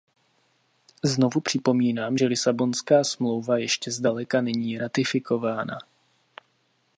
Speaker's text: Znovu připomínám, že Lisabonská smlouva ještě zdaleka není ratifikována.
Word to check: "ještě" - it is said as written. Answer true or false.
true